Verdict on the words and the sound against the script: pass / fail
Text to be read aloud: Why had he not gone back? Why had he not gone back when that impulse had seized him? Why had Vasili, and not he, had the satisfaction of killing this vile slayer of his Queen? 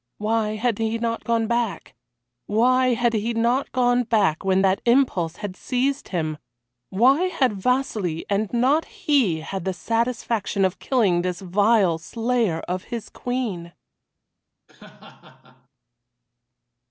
fail